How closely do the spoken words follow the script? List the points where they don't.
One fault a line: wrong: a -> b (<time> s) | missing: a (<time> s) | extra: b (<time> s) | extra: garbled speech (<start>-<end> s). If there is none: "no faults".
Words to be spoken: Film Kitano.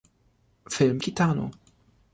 no faults